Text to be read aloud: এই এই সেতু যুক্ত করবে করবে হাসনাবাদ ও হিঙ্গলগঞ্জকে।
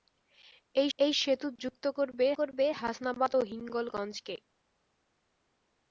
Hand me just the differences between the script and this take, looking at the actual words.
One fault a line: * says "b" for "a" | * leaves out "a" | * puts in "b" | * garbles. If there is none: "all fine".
all fine